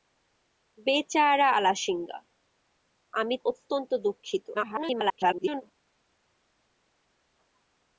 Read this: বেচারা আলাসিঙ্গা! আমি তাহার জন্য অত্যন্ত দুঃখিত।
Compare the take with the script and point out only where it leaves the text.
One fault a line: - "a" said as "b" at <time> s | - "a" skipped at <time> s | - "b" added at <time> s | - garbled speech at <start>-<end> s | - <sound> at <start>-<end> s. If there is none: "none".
- "তাহার জন্য" skipped at 3.4 s
- garbled speech at 4.5-5.6 s